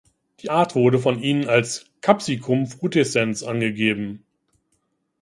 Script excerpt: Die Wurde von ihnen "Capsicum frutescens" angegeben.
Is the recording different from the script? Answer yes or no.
yes